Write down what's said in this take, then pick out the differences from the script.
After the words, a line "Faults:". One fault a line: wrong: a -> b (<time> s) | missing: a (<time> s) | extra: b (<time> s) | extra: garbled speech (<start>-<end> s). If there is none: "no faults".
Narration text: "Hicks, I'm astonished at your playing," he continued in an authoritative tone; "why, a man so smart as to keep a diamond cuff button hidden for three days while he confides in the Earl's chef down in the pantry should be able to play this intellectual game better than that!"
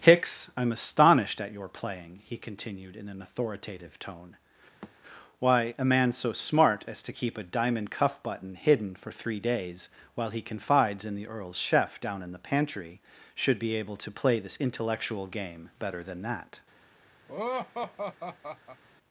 "Hicks, I'm astonished at your playing," he continued in an authoritative tone; "why, a man so smart as to keep a diamond cuff button hidden for three days while he confides in the Earl's chef down in the pantry should be able to play this intellectual game better than that!"
Faults:
no faults